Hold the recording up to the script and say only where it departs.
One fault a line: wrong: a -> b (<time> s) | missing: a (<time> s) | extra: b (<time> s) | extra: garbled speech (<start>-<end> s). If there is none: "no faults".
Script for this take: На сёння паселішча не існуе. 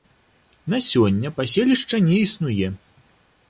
no faults